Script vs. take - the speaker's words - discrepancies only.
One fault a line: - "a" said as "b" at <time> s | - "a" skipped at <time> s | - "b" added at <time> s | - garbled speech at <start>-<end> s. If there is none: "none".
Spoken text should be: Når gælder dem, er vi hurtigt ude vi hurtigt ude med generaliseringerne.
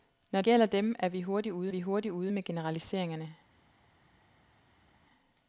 none